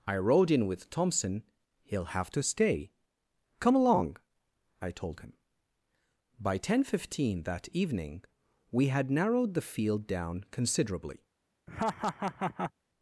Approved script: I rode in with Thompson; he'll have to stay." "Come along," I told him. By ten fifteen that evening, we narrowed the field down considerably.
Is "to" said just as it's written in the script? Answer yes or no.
yes